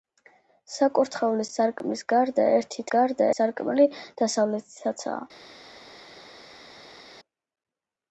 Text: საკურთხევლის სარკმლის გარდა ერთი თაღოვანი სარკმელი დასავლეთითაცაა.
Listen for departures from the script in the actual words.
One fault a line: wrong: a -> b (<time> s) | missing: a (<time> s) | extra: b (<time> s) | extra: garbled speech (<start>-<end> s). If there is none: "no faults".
wrong: თაღოვანი -> გარდა (3.0 s)